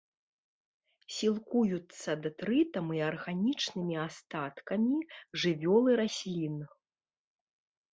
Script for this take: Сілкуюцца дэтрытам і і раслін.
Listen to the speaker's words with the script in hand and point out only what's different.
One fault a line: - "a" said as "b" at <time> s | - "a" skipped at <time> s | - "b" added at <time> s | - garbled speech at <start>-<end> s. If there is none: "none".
- "арганічнымі астаткамі жывёл" added at 3.1 s